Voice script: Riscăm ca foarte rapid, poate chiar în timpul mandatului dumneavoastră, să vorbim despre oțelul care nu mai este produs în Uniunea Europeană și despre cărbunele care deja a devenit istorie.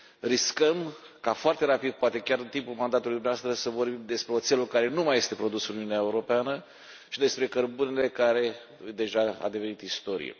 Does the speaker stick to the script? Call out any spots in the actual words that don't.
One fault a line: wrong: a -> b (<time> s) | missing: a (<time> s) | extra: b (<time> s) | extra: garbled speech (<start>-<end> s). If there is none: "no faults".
no faults